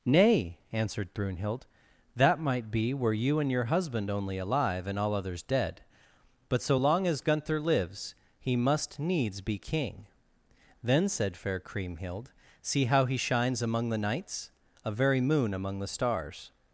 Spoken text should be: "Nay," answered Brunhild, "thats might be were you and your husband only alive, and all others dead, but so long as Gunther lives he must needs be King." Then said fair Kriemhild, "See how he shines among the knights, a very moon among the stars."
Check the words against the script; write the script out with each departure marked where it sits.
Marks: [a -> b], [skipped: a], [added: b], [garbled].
"Nay," answered Brunhild, ["thats -> that] might be were you and your husband only alive, and all others dead, but so long as Gunther lives he must needs be King." Then said fair Kriemhild, "See how he shines among the knights, a very moon among the stars."